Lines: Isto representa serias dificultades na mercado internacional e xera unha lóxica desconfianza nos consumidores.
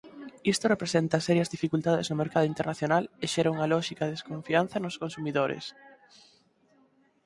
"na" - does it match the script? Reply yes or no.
no